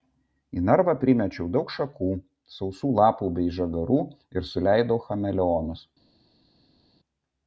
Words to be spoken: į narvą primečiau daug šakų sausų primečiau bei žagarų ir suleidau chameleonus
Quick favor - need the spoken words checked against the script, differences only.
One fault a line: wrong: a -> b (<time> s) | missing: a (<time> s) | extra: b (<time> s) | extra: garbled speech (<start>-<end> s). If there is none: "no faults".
wrong: primečiau -> lapų (3.0 s)